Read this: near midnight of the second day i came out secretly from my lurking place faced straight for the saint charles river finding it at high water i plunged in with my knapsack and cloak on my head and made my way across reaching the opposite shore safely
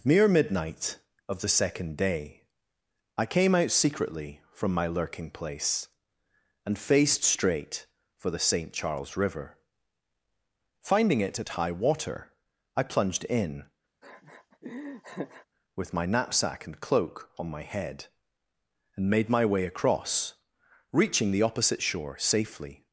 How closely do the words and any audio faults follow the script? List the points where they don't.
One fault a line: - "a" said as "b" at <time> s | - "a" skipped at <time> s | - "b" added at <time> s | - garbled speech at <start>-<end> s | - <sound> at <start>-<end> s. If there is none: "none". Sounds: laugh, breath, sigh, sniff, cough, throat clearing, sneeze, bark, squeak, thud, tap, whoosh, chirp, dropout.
- "and" added at 6.7 s
- laugh at 14.0-15.5 s